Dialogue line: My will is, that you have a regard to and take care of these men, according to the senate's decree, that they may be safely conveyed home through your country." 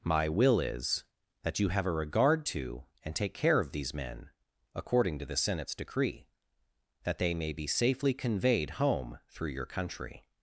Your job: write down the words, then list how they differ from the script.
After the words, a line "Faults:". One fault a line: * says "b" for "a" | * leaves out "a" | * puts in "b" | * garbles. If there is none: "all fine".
My will is, that you have a regard to and take care of these men, according to the senate's decree, that they may be safely conveyed home through your country."
Faults:
all fine